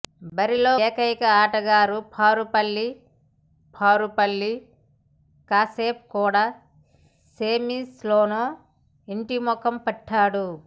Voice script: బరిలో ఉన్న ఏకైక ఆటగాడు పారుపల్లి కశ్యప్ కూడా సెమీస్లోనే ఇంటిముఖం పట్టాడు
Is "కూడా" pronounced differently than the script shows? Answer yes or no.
no